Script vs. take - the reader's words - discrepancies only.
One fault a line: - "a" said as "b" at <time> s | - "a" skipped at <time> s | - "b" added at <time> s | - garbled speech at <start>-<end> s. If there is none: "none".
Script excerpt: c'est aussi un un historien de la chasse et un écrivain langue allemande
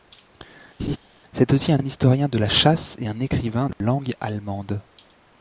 none